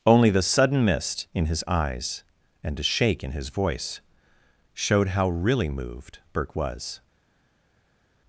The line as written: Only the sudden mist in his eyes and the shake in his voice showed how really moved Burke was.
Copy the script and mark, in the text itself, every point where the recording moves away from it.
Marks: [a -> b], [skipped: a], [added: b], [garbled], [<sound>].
Only the sudden mist in his eyes and [the -> a] shake in his voice showed how really moved Burke was.